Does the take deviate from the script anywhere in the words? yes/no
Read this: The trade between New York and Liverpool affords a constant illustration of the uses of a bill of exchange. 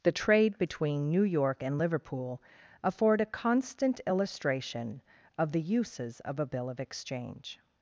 yes